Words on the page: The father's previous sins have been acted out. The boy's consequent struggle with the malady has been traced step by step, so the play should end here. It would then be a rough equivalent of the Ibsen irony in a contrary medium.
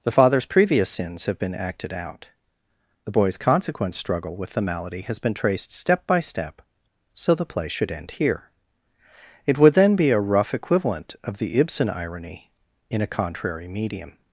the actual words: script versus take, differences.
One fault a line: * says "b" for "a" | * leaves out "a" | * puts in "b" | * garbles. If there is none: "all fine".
all fine